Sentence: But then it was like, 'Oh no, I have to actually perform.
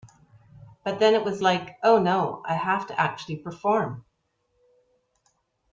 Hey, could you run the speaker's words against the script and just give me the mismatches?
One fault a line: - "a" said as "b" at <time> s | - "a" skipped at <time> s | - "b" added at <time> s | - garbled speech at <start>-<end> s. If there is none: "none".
none